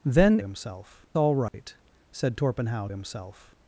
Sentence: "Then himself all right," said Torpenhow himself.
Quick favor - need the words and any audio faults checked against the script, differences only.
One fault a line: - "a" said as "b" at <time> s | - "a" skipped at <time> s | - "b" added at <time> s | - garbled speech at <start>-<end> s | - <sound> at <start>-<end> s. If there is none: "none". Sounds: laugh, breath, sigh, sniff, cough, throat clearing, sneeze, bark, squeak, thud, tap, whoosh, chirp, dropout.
- dropout at 1.5-1.5 s